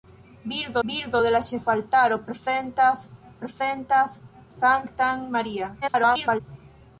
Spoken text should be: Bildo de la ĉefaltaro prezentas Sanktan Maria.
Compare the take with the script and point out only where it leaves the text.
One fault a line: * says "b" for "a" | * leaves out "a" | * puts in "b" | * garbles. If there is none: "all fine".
* puts in "bildo"
* puts in "prezentas"
* garbles